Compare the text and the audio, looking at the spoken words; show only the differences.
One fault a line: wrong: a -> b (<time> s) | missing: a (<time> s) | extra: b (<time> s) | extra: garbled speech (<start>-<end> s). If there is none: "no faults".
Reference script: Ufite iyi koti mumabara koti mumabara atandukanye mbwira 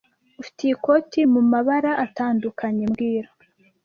missing: koti mumabara (1.9 s)